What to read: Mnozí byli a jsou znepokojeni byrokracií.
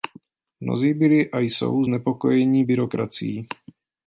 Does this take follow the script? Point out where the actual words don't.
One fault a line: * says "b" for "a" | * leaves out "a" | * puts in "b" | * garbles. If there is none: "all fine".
all fine